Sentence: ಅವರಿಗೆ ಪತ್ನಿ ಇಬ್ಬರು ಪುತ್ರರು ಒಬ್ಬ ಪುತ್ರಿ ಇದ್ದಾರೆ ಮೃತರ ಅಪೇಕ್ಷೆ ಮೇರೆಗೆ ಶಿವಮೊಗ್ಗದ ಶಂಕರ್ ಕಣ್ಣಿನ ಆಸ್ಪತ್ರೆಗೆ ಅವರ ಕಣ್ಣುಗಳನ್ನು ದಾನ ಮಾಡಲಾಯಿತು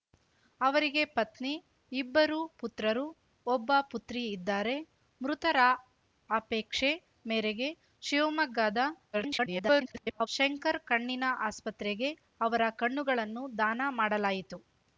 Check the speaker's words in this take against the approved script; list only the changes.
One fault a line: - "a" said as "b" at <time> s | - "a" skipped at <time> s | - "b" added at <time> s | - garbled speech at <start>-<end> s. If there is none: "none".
- garbled speech at 9.1-10.3 s